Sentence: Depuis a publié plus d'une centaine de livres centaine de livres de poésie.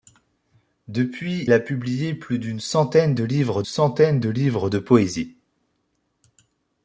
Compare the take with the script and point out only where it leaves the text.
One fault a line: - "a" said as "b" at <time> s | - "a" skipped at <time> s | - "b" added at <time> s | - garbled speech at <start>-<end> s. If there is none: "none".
none